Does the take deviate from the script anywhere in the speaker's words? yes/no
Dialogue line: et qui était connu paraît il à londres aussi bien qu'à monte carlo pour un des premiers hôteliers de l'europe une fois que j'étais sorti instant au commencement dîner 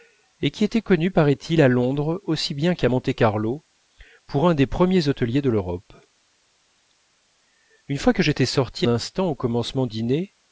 no